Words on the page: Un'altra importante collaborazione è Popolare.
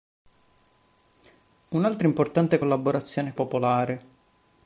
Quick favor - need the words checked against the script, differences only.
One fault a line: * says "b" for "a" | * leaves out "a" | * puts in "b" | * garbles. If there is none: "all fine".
all fine